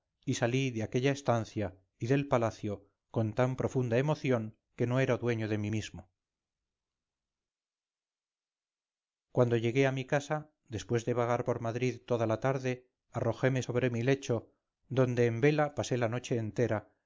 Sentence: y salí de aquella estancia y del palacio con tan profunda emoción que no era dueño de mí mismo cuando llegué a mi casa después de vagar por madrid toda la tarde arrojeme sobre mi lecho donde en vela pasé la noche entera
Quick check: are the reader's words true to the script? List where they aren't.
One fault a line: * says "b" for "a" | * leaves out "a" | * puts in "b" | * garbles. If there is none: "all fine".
all fine